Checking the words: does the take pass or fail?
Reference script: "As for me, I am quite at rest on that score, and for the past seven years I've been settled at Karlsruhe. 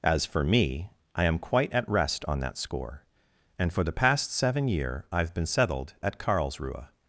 fail